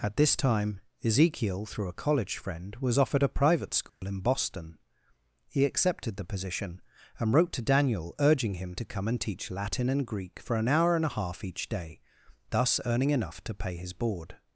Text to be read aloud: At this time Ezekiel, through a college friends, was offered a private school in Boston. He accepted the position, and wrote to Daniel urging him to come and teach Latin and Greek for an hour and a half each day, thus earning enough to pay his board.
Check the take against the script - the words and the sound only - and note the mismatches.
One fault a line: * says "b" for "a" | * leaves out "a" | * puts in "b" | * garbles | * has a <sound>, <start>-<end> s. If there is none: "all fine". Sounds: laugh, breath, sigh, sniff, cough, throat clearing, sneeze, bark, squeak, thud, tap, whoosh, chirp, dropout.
* says "friend" for "friends"
* has a dropout, 3.9-4.0 s